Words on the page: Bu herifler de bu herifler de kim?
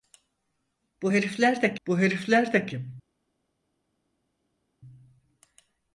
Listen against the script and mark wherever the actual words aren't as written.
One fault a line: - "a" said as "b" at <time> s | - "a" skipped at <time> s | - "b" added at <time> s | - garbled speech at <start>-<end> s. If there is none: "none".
none